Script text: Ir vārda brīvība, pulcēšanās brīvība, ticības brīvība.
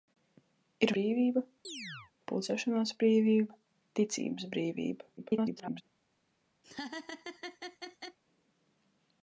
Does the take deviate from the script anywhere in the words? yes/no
yes